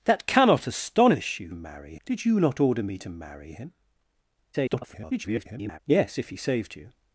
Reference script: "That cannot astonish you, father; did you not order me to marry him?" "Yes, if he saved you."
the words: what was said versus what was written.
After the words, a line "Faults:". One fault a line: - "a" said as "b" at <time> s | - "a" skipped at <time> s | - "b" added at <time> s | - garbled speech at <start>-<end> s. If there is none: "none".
"That cannot astonish you, marry; did you not order me to marry him?" [garbled] "Yes, if he saved you."
Faults:
- "father" said as "marry" at 1.5 s
- garbled speech at 4.5-5.8 s